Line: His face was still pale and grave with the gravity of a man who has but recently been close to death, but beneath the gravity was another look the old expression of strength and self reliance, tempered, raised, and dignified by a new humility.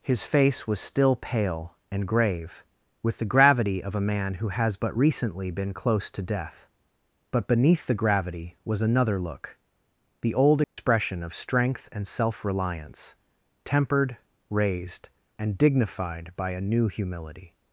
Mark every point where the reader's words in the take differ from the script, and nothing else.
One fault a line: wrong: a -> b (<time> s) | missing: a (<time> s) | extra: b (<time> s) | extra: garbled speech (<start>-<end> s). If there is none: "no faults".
no faults